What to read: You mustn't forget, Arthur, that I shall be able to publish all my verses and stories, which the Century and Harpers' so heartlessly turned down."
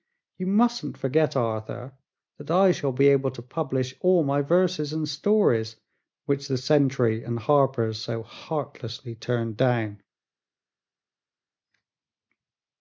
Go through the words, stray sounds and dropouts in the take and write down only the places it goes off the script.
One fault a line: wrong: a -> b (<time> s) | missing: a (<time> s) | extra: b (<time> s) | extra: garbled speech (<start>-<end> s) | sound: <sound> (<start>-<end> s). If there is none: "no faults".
no faults